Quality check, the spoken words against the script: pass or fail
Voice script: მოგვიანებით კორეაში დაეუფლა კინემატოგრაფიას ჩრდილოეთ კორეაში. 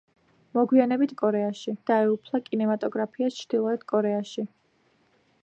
pass